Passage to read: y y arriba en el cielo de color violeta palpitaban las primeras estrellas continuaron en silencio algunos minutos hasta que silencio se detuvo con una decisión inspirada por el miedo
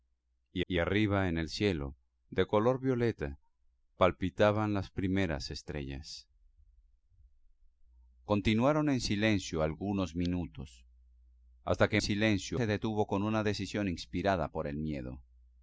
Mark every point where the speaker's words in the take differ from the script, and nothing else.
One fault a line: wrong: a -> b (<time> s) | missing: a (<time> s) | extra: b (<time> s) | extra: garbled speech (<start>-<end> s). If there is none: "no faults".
no faults